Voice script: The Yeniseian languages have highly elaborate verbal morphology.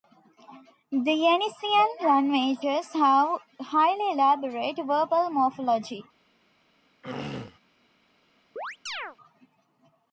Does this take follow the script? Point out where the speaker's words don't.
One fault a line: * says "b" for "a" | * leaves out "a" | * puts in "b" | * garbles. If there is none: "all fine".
all fine